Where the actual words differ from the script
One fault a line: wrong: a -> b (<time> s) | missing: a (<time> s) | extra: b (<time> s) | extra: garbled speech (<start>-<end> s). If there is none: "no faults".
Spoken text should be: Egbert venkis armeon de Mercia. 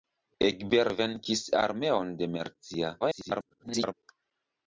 extra: garbled speech (3.0-3.9 s)